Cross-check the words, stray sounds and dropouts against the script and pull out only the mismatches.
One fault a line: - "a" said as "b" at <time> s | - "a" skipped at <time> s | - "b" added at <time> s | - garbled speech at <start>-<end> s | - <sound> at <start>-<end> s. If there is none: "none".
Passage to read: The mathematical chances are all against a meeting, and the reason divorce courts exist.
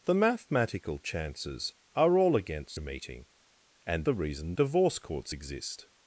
none